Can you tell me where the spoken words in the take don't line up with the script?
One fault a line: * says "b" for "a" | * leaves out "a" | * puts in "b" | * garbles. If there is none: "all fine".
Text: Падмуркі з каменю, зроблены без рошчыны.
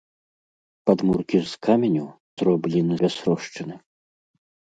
all fine